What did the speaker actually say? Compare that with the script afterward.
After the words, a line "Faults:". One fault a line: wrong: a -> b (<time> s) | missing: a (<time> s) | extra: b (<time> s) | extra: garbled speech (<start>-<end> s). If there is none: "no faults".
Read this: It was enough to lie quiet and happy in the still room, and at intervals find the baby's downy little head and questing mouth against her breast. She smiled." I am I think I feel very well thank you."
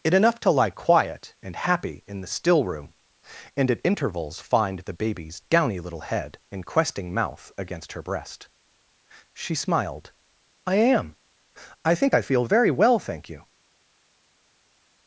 It enough to lie quiet and happy in the still room, and at intervals find the baby's downy little head and questing mouth against her breast. She smiled." I am I think I feel very well thank you."
Faults:
missing: was (0.1 s)